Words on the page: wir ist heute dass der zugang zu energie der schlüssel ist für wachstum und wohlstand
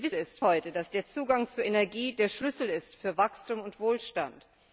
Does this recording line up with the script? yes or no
yes